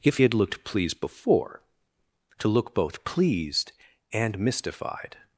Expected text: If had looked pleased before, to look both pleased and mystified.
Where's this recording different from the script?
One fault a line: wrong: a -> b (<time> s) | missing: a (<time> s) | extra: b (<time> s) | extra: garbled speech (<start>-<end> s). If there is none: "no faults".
no faults